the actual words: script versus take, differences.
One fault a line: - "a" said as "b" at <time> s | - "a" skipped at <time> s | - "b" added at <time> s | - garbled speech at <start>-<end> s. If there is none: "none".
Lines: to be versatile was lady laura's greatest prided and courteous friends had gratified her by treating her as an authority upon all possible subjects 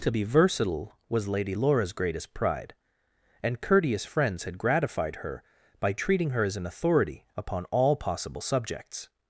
- "prided" said as "pride" at 2.3 s